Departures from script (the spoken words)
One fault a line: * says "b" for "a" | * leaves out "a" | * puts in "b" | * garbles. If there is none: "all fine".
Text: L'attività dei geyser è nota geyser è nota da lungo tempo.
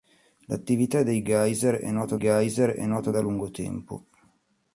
all fine